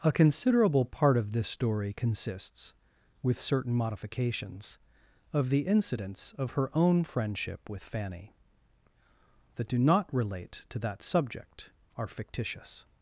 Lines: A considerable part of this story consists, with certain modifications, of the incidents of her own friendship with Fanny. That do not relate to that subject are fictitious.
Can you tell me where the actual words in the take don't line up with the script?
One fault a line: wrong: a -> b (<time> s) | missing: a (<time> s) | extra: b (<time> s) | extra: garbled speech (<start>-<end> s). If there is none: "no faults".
no faults